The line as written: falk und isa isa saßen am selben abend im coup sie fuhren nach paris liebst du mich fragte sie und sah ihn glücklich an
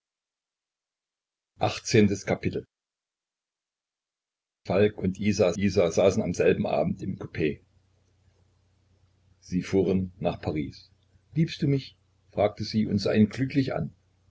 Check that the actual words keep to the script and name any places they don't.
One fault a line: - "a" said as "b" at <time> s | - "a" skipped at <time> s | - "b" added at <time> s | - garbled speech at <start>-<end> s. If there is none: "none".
none